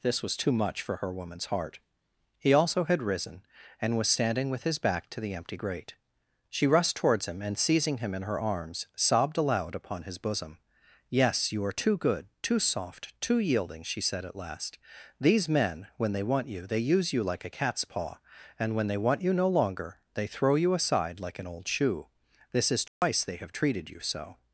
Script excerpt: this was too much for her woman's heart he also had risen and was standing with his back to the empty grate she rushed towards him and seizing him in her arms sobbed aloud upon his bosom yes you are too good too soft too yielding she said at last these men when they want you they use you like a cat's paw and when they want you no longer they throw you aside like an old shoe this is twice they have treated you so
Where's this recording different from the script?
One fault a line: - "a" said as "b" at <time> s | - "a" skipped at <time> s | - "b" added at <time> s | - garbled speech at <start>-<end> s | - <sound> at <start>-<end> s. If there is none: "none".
- dropout at 22.9-23.0 s